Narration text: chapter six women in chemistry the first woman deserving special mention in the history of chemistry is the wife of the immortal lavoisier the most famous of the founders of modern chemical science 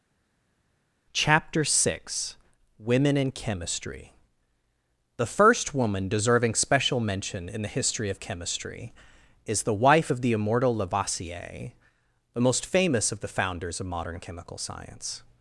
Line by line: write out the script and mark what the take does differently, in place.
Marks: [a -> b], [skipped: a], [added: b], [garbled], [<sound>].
chapter six women in chemistry the first woman deserving special mention in the history of chemistry is the wife of the immortal lavoisier the most famous of the founders of modern chemical science